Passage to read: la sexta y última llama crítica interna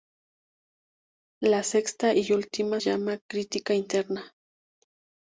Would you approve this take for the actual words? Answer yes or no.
yes